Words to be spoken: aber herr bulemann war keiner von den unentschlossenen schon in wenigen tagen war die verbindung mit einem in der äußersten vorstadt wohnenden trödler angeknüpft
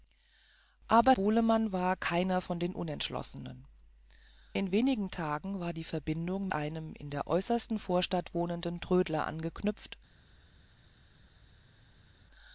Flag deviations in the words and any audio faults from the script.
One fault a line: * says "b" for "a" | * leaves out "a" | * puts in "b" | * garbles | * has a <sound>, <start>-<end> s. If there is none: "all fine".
* leaves out "herr"
* leaves out "schon"
* leaves out "mit"